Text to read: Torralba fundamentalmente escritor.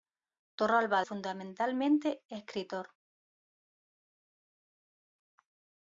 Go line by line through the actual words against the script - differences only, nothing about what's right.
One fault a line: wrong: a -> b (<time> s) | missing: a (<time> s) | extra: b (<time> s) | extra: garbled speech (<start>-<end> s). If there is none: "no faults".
no faults